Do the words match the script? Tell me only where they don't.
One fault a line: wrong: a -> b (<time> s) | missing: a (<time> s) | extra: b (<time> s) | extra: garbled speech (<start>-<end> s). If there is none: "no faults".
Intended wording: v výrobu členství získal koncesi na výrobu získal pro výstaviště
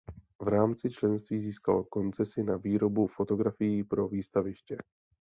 wrong: výrobu -> rámci (0.5 s)
wrong: získal -> fotografií (3.1 s)